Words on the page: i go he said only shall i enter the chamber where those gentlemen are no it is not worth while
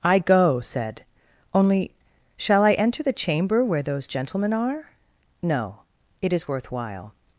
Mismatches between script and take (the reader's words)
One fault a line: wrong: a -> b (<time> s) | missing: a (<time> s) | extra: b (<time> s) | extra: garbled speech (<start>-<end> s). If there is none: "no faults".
missing: he (0.6 s)
missing: not (6.5 s)